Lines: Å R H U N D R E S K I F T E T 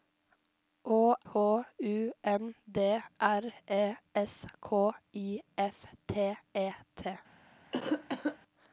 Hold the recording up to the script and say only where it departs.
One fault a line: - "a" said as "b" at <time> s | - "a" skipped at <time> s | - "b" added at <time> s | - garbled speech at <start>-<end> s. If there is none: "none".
- "R" skipped at 1.1 s